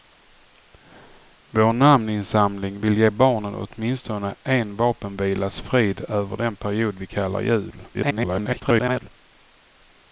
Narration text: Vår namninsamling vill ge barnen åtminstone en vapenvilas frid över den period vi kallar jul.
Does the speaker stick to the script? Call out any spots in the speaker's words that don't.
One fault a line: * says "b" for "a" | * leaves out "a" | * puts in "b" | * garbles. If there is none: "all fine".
* garbles